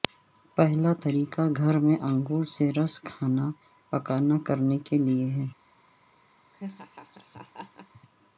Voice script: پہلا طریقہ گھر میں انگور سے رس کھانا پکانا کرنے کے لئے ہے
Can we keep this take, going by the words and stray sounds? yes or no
no